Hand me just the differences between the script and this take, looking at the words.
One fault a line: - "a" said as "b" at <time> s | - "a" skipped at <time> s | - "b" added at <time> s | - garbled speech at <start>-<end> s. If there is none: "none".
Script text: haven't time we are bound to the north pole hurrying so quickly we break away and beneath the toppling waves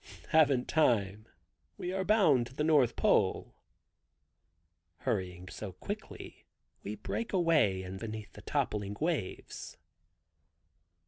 none